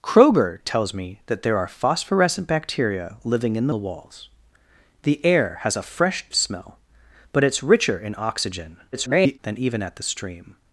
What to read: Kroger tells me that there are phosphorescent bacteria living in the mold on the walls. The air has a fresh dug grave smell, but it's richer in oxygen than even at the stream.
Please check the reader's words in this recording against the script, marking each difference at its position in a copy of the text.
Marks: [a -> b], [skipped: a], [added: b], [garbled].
Kroger tells me that there are phosphorescent bacteria living in the [skipped: mold on] the walls. The air has a fresh [skipped: dug grave] smell, but it's richer in oxygen [garbled] than even at the stream.